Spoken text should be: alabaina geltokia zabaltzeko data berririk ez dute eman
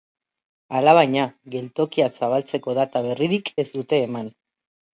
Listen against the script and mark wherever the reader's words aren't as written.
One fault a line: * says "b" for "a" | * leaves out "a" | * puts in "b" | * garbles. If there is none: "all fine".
all fine